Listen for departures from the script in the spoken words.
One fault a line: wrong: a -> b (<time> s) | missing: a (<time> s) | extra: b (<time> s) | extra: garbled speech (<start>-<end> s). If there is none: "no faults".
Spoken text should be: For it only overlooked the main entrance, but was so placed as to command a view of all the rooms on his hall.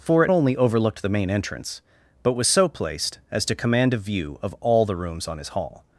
no faults